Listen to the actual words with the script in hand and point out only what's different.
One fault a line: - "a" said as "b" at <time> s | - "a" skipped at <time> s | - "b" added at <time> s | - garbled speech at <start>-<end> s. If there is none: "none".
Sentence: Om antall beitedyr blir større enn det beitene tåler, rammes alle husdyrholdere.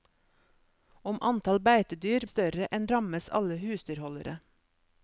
- "blir" skipped at 2.2 s
- "det beitene tåler" skipped at 2.9 s